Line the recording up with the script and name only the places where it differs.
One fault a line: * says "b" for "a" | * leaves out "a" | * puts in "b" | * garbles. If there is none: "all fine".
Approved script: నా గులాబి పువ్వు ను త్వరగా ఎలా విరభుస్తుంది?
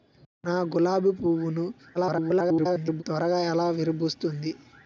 * garbles